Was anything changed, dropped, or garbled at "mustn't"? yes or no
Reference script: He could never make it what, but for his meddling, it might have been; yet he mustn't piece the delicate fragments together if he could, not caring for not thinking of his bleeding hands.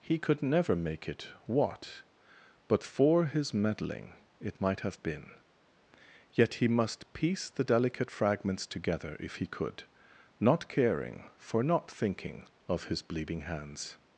yes